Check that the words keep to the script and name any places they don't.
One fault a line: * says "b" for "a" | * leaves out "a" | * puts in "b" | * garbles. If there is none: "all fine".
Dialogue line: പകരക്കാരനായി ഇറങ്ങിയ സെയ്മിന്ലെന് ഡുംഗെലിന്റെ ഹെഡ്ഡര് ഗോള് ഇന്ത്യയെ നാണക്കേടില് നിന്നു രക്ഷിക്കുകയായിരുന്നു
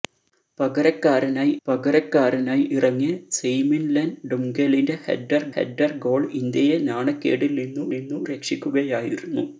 * puts in "പകരക്കാരനായി"
* puts in "ഹെഡ്ഡര്"
* puts in "നിന്നു"